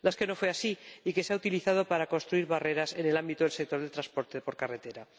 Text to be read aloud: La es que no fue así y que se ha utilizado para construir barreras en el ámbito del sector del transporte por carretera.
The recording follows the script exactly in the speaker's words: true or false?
true